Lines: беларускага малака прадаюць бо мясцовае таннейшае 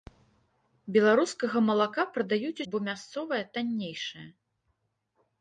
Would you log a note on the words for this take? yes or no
no